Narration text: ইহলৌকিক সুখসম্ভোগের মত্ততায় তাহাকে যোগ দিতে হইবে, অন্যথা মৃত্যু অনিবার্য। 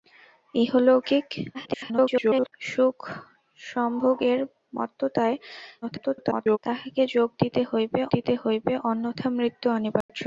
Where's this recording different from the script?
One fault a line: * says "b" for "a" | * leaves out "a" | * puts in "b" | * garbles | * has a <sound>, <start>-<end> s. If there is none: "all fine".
* garbles
* garbles
* puts in "দিতে হইবে"
* has a dropout, 10.0-10.1 s